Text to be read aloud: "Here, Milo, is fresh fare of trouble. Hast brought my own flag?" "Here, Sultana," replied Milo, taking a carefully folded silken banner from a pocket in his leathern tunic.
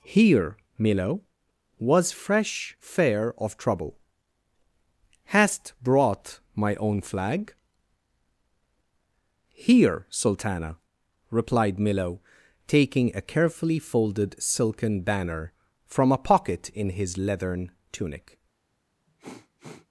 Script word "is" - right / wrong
wrong